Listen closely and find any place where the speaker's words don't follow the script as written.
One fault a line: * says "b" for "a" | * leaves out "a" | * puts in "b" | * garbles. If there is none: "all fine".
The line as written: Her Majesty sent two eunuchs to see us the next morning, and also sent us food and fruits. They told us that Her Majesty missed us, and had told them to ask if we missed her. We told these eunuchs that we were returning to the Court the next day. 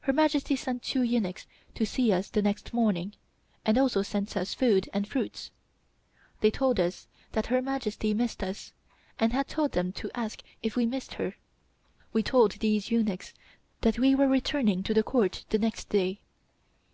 all fine